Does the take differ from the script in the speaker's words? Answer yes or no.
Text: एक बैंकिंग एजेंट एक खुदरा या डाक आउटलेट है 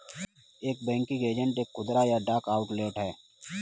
no